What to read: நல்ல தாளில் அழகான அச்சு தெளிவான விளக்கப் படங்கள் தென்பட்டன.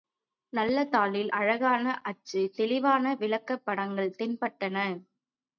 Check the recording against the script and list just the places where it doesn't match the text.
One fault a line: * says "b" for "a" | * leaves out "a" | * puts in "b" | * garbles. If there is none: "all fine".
all fine